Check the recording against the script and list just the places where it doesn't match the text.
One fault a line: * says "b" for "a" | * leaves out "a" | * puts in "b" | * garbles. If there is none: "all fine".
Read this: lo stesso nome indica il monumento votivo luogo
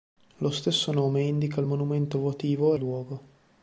all fine